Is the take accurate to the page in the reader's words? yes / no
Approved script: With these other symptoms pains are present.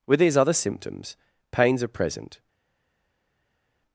yes